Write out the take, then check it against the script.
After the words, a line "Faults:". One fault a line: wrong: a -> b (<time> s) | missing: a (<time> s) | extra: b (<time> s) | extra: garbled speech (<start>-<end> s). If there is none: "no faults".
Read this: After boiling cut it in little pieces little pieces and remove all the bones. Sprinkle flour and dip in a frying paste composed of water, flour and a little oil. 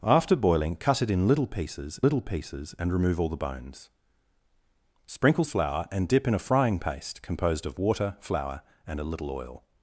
After boiling cut it in little pieces little pieces and remove all the bones. Sprinkle flour and dip in a frying paste composed of water, flour and a little oil.
Faults:
no faults